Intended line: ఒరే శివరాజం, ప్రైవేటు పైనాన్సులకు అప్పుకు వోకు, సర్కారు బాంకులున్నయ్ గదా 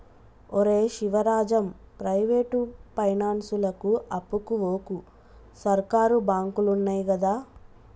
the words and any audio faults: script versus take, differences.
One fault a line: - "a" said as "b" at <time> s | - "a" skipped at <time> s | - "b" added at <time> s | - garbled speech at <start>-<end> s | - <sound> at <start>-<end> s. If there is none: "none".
none